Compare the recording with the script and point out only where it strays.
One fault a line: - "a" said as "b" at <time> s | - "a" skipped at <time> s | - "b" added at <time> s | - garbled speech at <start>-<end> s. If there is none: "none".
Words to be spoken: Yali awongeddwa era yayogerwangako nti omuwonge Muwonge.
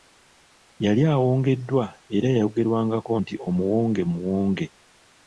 none